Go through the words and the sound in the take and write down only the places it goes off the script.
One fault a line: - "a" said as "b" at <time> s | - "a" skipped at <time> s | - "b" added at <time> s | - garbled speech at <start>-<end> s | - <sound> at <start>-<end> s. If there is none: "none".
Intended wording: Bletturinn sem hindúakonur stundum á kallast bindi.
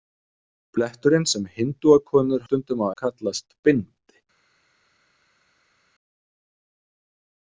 none